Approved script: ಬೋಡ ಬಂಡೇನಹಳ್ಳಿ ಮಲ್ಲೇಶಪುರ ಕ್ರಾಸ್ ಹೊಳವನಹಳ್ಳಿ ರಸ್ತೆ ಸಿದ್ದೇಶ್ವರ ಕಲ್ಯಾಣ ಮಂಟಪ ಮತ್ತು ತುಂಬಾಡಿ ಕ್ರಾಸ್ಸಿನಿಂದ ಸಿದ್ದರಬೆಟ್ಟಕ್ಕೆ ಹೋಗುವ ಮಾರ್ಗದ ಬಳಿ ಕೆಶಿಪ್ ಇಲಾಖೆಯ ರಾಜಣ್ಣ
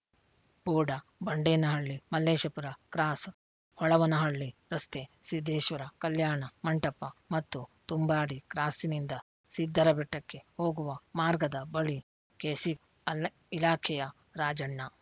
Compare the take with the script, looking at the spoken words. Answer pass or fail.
pass